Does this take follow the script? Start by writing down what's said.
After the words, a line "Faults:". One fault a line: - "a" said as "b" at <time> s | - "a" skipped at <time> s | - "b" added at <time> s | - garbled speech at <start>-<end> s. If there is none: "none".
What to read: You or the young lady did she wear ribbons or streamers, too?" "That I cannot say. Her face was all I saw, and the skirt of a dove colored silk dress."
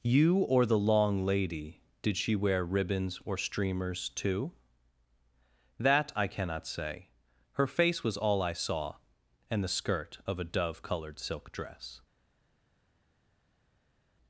You or the long lady did she wear ribbons or streamers, too?" "That I cannot say. Her face was all I saw, and the skirt of a dove colored silk dress."
Faults:
- "young" said as "long" at 0.8 s